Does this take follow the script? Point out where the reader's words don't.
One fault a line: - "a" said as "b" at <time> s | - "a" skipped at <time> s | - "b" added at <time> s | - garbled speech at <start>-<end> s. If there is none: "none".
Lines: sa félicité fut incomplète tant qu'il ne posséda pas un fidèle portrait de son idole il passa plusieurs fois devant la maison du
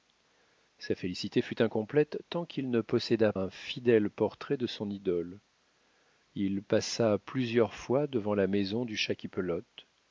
- "pas" skipped at 3.3 s